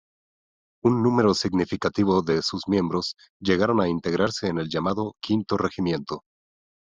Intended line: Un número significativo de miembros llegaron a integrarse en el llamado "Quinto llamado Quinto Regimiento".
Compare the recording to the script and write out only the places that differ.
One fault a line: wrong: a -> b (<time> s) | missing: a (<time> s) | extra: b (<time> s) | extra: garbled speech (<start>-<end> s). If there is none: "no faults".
extra: sus (2.4 s)
missing: llamado Quinto (5.6 s)